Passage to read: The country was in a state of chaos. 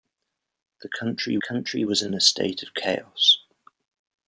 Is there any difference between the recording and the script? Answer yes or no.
yes